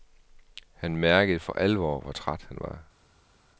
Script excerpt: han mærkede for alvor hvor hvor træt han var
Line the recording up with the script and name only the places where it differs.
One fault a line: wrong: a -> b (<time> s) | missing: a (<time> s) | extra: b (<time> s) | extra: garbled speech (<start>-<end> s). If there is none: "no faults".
missing: hvor (2.1 s)